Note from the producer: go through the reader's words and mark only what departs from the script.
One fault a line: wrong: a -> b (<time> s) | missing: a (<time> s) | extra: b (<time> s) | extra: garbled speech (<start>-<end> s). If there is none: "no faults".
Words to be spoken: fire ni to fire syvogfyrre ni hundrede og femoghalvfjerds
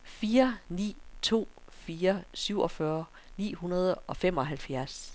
no faults